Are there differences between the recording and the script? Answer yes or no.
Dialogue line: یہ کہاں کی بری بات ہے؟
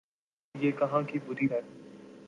yes